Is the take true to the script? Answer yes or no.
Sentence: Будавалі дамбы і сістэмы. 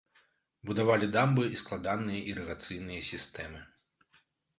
no